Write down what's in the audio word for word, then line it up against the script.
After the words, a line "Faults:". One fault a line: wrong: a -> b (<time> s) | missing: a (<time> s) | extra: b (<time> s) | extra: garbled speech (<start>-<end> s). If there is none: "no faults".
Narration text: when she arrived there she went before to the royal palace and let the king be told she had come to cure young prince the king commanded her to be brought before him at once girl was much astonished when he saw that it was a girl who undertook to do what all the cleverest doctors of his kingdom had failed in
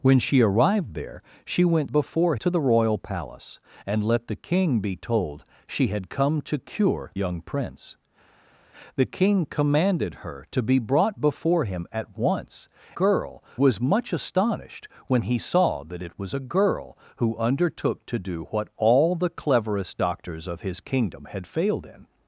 when she arrived there she went before to the royal palace and let the king be told she had come to cure young prince the king commanded her to be brought before him at once girl was much astonished when he saw that it was a girl who undertook to do what all the cleverest doctors of his kingdom had failed in
Faults:
no faults